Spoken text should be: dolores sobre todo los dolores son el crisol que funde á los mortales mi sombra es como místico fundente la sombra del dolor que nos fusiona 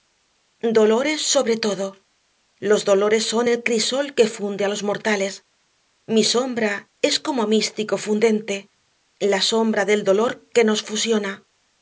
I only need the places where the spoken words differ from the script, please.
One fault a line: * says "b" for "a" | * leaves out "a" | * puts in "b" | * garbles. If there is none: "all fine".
all fine